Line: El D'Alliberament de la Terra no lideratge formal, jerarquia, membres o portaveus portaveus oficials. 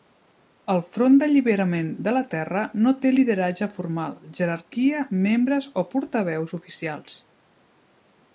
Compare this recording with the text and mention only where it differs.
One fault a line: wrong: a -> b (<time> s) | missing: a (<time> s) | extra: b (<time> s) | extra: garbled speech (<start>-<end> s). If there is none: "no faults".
extra: Front (0.9 s)
extra: té (3.0 s)
missing: portaveus (6.6 s)